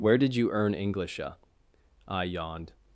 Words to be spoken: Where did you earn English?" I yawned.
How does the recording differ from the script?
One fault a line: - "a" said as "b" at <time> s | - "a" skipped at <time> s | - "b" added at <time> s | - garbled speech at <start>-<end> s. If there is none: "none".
none